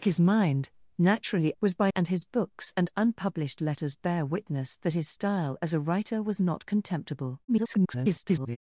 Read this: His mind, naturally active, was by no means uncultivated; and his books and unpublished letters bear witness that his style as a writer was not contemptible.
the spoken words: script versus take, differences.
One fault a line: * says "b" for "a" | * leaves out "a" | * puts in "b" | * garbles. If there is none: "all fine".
* leaves out "active"
* leaves out "no means uncultivated"
* garbles